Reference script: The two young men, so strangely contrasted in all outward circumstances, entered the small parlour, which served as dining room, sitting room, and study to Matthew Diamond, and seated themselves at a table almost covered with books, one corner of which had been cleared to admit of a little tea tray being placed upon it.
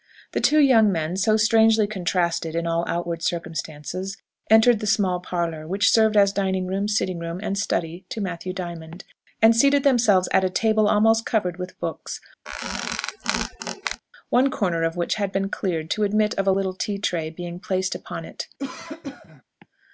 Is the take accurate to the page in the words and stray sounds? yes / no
no